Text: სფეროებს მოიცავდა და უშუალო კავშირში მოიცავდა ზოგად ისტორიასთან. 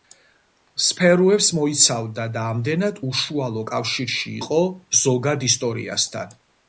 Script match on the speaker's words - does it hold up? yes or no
no